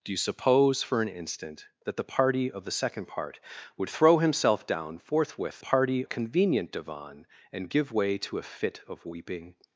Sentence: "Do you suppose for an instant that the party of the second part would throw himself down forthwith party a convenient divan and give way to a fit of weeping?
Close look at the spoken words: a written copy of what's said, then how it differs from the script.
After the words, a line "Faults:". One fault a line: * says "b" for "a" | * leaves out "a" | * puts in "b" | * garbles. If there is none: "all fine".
"Do you suppose for an instant that the party of the second part would throw himself down forthwith party a convenient divan and give way to a fit of weeping?
Faults:
all fine